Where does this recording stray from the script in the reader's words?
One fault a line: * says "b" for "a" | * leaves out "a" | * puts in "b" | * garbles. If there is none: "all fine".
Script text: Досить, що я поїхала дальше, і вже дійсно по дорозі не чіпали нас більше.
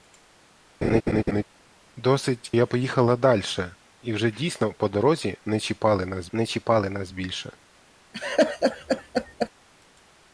* leaves out "що"
* puts in "не чіпали нас"